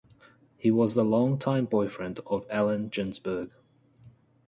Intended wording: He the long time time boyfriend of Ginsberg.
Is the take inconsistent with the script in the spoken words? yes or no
yes